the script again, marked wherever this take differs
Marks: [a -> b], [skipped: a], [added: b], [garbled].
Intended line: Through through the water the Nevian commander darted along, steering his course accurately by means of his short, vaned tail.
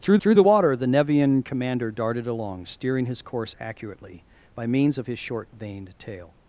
Through through the water the Nevian commander darted along, steering his course accurately by means of his short, vaned tail.